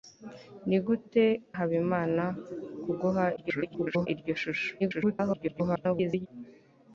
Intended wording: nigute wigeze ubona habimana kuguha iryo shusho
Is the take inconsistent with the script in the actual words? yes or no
yes